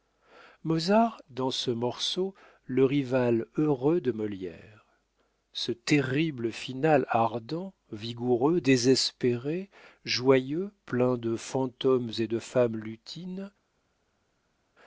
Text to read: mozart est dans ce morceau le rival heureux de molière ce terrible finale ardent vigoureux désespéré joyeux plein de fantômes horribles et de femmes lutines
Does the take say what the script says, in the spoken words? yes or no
no